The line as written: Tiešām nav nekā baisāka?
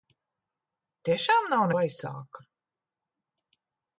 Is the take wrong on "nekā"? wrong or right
wrong